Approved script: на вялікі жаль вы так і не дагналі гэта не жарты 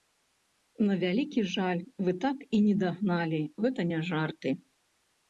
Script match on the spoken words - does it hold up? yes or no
yes